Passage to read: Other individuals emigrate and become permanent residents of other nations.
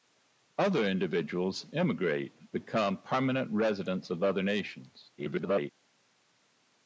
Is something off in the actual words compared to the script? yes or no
yes